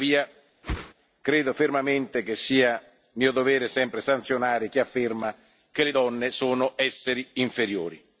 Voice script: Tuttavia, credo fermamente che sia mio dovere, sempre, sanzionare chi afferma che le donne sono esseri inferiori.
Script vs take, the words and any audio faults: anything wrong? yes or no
yes